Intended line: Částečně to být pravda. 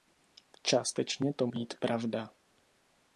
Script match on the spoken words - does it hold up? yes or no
yes